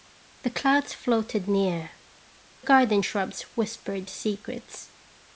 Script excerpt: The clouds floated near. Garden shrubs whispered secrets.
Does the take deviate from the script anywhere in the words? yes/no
no